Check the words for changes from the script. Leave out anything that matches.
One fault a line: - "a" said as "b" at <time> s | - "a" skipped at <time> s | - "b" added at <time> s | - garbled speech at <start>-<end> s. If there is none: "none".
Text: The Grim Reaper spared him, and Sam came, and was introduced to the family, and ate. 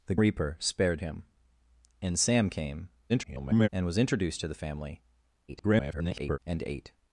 - "Grim" skipped at 0.1 s
- garbled speech at 3.1-3.7 s
- garbled speech at 5.5-6.4 s